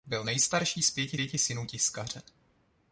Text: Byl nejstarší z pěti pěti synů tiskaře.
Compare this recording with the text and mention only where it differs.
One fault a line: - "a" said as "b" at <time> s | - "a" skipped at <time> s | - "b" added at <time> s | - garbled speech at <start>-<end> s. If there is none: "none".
none